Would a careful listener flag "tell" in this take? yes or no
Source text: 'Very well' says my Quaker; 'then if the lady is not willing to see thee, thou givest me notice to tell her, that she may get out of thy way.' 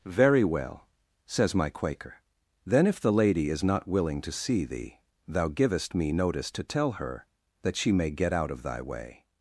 no